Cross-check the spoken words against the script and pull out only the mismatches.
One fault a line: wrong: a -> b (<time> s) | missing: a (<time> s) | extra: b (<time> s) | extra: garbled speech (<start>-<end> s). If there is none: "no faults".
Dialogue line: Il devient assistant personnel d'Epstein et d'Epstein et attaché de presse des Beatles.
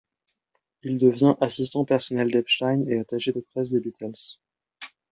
missing: d'Epstein et (3.0 s)